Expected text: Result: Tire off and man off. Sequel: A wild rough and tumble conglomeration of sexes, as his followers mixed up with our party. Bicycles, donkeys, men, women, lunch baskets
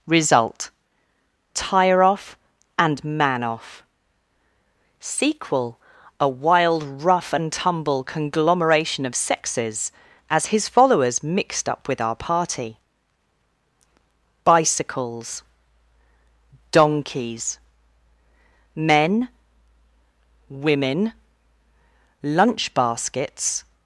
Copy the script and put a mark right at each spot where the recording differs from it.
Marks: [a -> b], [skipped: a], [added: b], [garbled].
Result: Tire off and man off. Sequel: A wild rough and tumble conglomeration of sexes, as his followers mixed up with our party. Bicycles, donkeys, men, women, lunch baskets